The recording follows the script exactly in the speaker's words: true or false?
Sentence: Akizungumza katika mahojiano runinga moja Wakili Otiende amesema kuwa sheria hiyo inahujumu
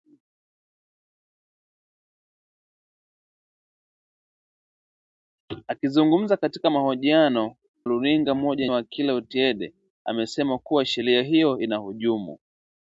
true